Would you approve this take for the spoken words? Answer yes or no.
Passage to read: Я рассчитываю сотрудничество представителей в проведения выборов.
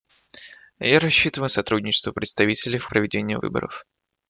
yes